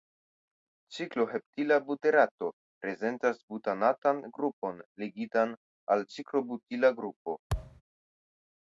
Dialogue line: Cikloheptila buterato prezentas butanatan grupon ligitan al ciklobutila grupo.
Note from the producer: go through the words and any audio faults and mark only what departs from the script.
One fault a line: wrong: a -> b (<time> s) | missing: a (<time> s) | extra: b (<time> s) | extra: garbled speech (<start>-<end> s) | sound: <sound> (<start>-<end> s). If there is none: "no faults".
sound: thud (7.5-7.8 s)